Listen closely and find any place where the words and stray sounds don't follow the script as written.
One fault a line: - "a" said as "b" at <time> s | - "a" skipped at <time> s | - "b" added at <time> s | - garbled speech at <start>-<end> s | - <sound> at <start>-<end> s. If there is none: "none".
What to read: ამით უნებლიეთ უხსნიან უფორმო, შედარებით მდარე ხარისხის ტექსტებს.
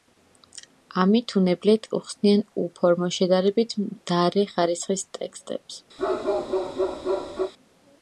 - bark at 6.0-7.5 s